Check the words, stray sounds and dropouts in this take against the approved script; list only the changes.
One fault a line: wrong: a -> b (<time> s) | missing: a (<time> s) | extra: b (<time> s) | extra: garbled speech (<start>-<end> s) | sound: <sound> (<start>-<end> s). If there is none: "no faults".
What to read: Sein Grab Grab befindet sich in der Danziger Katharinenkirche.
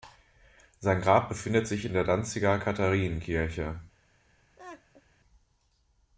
missing: Grab (1.3 s)
sound: laugh (4.6-5.0 s)